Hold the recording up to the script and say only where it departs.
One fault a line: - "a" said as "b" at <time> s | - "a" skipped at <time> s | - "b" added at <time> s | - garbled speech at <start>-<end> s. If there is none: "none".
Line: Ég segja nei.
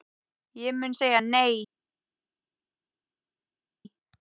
- "mun" added at 0.8 s